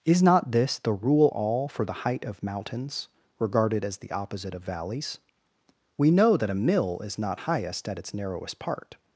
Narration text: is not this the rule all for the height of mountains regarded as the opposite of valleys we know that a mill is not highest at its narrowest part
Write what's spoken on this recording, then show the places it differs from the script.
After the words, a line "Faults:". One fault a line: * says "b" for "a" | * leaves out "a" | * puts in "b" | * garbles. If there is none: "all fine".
is not this the rule all for the height of mountains regarded as the opposite of valleys we know that a mill is not highest at its narrowest part
Faults:
all fine